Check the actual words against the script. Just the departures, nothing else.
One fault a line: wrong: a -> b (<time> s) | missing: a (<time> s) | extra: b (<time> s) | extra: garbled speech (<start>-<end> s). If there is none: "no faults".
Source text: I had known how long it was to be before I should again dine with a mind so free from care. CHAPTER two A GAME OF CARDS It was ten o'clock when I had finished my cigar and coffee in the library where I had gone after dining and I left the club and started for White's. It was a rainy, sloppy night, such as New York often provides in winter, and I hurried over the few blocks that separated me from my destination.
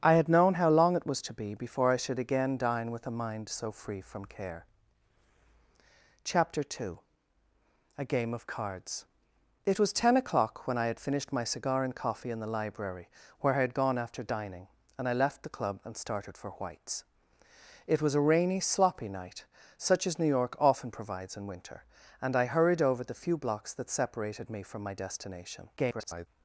extra: garbled speech (25.8-26.3 s)